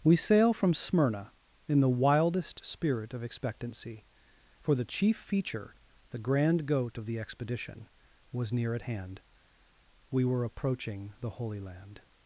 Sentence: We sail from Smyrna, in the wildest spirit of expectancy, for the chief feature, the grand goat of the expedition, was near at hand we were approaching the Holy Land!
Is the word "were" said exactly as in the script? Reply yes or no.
yes